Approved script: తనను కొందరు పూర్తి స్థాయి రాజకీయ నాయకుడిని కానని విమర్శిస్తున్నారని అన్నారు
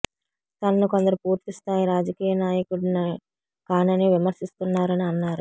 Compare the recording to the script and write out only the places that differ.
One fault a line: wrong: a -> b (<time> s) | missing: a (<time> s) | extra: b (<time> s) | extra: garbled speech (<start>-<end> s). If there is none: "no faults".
no faults